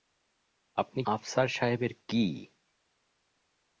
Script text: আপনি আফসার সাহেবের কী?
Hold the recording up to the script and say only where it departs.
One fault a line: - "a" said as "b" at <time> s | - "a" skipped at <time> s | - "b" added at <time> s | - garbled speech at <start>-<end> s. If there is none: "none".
none